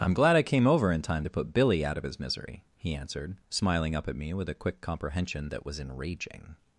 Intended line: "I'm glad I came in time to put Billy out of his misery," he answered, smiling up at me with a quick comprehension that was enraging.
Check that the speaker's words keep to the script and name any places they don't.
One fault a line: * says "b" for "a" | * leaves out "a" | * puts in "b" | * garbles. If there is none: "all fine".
* puts in "over"